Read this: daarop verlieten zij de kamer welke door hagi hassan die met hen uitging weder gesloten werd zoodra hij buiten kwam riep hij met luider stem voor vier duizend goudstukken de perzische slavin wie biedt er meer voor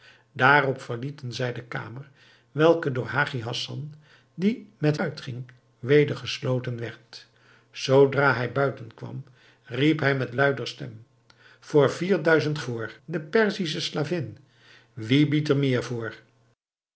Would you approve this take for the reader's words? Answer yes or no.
no